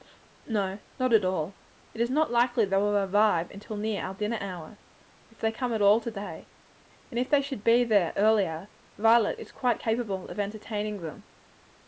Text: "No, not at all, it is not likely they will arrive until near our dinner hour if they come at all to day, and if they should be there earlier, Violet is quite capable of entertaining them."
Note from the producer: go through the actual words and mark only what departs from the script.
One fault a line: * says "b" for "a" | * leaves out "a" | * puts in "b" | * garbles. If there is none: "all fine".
all fine